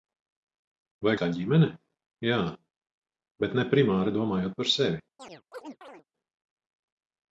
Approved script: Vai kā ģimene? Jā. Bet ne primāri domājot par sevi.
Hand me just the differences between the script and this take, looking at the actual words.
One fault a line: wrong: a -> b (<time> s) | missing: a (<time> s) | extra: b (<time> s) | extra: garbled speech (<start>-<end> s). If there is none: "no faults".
no faults